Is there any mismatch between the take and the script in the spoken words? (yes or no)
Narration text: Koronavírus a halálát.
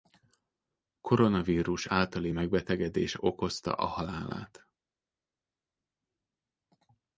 yes